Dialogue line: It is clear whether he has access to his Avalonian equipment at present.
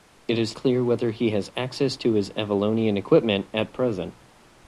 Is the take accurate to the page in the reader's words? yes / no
yes